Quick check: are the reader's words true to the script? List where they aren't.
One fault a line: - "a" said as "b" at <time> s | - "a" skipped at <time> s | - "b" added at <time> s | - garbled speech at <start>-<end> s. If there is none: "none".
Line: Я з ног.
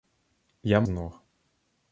none